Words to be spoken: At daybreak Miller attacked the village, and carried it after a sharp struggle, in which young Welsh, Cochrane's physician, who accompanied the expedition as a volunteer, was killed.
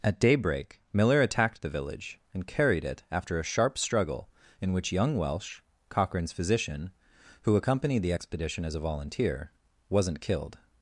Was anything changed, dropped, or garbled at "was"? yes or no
yes